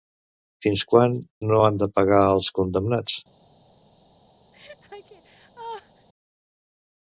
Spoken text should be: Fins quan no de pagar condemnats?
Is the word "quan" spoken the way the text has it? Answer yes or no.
yes